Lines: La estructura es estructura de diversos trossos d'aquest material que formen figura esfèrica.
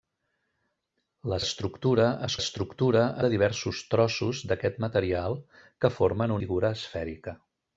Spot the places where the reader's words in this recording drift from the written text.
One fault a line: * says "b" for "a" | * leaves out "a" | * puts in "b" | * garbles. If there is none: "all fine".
all fine